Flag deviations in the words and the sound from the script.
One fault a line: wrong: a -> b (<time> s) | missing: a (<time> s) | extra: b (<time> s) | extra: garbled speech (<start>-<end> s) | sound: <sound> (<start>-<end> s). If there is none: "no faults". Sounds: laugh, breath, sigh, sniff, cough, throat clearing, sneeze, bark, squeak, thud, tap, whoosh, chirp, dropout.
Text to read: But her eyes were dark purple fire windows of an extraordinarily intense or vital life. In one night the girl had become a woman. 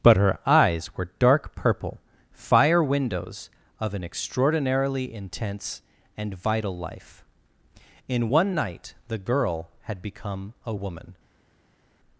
wrong: or -> and (6.2 s)